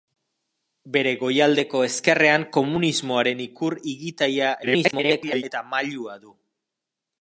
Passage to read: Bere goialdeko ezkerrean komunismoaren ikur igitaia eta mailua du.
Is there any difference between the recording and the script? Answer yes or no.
yes